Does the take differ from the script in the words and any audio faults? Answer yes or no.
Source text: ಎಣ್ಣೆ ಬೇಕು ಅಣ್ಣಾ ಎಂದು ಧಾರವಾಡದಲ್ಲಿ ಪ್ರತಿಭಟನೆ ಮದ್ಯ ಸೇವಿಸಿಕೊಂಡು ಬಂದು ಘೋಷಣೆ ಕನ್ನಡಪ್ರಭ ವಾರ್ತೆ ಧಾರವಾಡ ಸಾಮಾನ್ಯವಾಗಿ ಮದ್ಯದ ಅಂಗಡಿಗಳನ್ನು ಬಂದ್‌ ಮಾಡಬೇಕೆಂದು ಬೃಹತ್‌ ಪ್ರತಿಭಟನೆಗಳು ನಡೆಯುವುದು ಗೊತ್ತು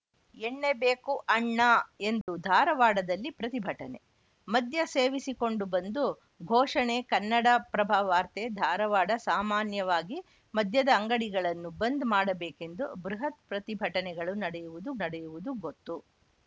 yes